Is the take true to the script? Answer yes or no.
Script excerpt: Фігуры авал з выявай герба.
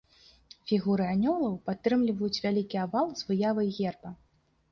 no